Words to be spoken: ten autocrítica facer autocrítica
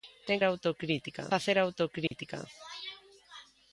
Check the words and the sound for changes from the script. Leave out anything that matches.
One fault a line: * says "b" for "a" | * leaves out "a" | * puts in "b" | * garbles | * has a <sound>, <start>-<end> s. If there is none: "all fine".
* has a dropout, 2.1-2.1 s